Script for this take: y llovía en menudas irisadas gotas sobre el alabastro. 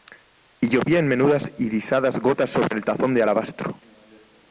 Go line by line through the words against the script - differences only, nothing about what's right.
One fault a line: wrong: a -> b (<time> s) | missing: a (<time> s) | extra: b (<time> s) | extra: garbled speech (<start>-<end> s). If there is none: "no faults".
extra: tazón de (2.8 s)